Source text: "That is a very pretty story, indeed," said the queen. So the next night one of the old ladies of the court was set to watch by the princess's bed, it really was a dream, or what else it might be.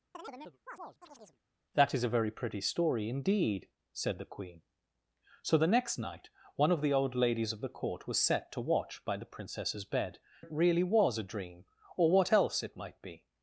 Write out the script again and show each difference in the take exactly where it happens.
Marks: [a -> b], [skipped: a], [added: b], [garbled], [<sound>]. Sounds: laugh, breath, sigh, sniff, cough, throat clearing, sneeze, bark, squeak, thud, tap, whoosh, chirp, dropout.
[chirp] "That is a very pretty story, indeed," said the queen. So the next night one of the old ladies of the court was set to watch by the princess's bed, it really was a dream, or what else it might be.